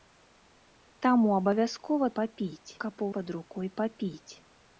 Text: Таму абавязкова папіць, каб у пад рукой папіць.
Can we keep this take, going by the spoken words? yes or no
yes